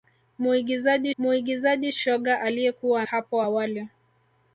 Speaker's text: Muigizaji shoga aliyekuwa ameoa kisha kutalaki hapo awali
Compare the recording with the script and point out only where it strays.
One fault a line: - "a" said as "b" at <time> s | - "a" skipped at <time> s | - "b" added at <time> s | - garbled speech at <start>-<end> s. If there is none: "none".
- "muigizaji" added at 1.2 s
- "ameoa kisha kutalaki" skipped at 3.0 s